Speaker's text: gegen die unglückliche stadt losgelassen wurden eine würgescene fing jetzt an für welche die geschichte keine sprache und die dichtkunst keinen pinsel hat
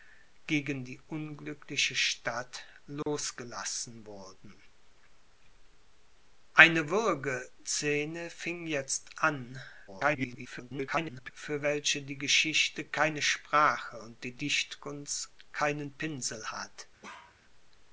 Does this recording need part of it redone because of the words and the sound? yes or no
yes